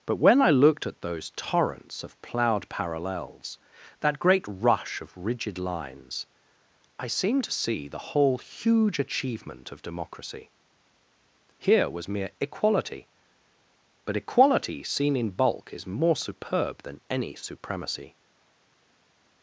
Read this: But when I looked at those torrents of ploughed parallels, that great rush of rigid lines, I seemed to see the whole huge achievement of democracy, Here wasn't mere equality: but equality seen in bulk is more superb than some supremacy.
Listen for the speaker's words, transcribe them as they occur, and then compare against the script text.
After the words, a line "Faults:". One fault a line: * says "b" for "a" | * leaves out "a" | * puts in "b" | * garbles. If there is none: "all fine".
But when I looked at those torrents of ploughed parallels, that great rush of rigid lines, I seemed to see the whole huge achievement of democracy, Here was mere equality: but equality seen in bulk is more superb than any supremacy.
Faults:
* says "was" for "wasn't"
* says "any" for "some"